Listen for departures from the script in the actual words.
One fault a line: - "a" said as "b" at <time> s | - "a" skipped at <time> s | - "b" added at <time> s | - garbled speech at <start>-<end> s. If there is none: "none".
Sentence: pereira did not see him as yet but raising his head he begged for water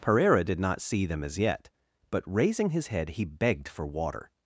- "him" said as "them" at 1.1 s